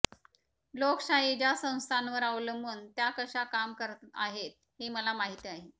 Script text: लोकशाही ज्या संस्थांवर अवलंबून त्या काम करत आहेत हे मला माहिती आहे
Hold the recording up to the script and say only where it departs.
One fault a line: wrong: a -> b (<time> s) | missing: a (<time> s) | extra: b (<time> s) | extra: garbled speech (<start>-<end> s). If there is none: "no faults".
extra: कशा (3.2 s)